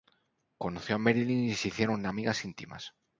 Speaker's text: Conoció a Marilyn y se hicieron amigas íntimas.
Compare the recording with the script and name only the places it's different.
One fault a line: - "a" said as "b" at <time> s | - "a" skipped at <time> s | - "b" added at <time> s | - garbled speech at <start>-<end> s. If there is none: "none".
none